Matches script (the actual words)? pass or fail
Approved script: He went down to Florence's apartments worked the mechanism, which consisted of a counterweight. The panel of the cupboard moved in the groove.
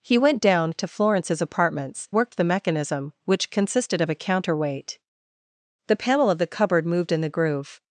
pass